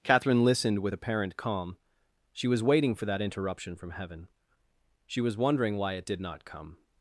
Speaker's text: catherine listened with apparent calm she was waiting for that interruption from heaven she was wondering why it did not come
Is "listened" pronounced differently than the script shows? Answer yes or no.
no